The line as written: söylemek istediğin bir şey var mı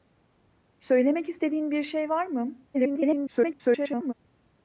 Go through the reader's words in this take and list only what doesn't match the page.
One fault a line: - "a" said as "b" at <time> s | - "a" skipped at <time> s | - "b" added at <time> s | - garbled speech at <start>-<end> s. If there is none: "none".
- garbled speech at 2.7-4.1 s